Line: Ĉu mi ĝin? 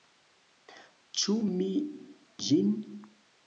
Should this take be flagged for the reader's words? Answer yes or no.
no